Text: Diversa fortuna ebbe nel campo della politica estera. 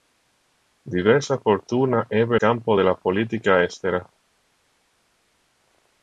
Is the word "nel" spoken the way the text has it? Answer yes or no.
no